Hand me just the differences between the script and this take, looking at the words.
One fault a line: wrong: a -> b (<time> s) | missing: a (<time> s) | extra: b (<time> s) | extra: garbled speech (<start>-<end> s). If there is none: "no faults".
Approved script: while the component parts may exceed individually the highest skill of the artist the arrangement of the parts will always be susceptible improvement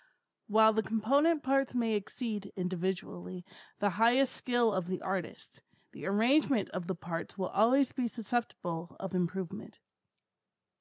extra: of (9.0 s)